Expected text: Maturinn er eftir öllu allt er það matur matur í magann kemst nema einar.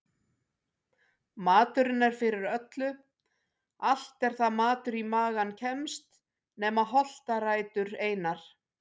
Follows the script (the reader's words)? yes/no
no